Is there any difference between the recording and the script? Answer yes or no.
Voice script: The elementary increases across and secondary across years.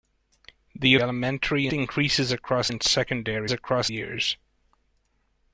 no